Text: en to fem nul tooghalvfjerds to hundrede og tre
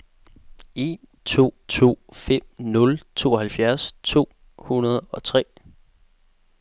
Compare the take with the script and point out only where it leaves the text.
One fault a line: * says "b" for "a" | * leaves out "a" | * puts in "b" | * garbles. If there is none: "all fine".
* puts in "to"